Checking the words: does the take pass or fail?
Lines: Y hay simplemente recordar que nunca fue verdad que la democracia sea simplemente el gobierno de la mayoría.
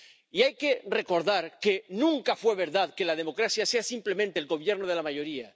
fail